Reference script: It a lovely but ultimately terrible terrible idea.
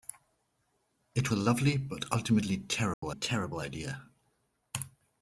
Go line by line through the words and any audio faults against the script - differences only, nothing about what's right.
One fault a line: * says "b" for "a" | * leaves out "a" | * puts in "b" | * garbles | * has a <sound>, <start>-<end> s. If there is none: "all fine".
* has a dropout, 2.9-3.0 s